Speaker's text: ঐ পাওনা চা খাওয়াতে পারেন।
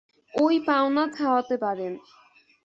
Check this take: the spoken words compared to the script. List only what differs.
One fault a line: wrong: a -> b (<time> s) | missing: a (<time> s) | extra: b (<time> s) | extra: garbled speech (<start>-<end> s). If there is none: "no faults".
missing: চা (1.0 s)